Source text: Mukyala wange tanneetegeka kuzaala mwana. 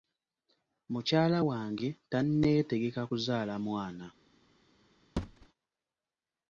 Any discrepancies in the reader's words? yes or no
no